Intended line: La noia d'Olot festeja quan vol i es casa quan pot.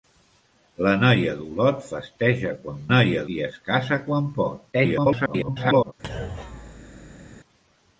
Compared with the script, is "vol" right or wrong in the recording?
wrong